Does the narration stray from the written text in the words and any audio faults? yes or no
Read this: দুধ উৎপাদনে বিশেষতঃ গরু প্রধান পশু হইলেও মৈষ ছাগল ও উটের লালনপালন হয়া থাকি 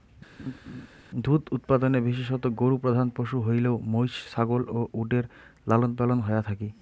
yes